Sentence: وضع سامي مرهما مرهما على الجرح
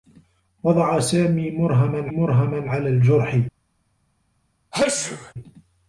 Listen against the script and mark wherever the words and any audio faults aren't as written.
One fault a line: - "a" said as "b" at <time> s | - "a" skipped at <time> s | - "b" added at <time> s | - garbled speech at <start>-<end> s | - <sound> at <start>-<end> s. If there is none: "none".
- sneeze at 4.7-5.3 s